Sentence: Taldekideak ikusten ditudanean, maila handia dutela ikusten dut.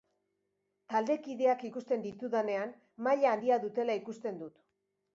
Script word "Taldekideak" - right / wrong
right